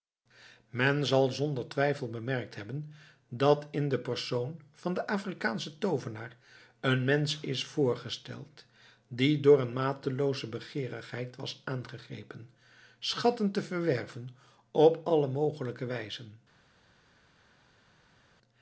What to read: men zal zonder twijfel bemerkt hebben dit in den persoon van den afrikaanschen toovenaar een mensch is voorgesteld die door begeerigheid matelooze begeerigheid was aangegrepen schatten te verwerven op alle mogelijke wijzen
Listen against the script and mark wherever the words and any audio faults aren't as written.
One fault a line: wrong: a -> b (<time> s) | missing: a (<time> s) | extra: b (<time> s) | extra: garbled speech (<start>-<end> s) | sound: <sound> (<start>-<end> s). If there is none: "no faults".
wrong: dit -> dat (3.3 s)
wrong: begeerigheid -> een (9.6 s)